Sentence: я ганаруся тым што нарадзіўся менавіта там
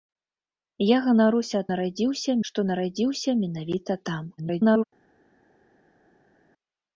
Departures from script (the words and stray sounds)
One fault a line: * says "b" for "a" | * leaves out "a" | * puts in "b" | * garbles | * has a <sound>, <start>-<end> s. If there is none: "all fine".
* says "нарадзіўся" for "тым"
* garbles